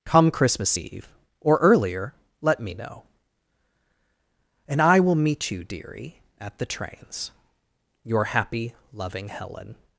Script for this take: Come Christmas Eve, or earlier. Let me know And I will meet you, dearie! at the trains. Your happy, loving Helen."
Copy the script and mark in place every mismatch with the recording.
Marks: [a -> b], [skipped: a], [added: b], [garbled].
Come Christmas Eve, or earlier. Let me know And I will meet you, dearie! at the trains. Your happy, loving Helen."